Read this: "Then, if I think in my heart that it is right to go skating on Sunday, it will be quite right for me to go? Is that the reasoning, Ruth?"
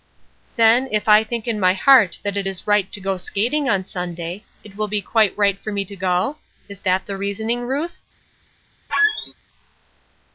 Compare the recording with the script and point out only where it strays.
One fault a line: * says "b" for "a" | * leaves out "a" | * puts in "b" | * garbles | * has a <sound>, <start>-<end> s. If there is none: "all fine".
* has a squeak, 8.9-9.3 s